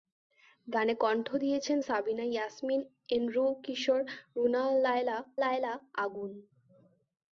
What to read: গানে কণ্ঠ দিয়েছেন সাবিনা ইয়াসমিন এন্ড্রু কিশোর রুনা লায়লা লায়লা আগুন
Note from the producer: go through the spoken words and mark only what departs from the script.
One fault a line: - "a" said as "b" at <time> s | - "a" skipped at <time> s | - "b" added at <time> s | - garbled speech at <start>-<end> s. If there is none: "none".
none